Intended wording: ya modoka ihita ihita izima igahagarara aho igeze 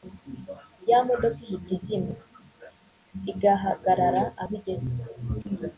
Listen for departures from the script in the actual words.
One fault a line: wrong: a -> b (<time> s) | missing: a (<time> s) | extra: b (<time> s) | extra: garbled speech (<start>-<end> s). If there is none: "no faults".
missing: ihita (1.7 s)